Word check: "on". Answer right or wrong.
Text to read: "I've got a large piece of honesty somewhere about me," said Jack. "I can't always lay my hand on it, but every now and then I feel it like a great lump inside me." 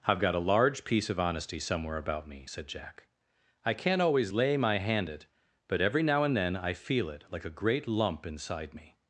wrong